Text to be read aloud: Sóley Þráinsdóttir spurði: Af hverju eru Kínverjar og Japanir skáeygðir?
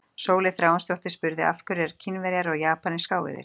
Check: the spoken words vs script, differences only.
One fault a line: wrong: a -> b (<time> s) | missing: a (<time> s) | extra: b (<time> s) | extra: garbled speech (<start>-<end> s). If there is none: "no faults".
no faults